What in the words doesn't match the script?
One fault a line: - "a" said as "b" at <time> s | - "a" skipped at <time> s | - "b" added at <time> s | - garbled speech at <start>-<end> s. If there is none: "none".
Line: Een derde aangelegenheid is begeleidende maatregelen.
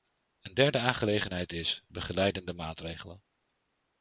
none